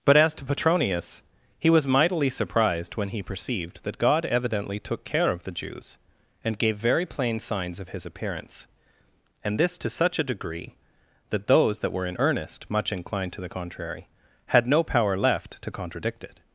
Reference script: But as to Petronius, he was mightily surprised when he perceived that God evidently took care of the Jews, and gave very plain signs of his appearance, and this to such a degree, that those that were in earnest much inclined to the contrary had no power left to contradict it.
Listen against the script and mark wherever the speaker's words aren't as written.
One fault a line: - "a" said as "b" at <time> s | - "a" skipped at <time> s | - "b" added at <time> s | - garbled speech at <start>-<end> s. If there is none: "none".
none